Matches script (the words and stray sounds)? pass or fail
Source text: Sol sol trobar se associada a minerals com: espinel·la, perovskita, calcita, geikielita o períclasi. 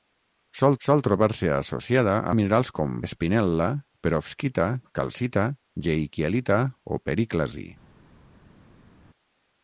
pass